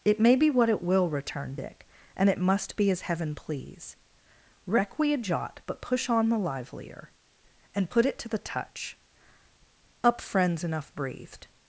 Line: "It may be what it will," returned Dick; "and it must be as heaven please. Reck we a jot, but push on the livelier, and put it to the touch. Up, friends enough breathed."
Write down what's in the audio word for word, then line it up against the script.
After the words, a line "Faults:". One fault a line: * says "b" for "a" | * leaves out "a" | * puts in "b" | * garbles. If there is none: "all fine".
"It may be what it will," returned Dick; "and it must be as heaven please. Reck we a jot, but push on the livelier, and put it to the touch. Up, friends enough breathed."
Faults:
all fine